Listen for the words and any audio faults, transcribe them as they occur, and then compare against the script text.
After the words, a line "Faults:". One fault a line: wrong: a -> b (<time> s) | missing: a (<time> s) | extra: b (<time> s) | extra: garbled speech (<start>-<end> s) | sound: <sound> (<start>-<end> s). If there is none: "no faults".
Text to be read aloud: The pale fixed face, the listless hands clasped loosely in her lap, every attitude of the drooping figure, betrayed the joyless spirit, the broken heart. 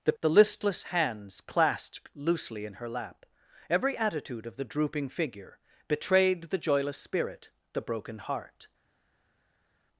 The the listless hands clasped loosely in her lap, every attitude of the drooping figure, betrayed the joyless spirit, the broken heart.
Faults:
missing: pale fixed face (0.1 s)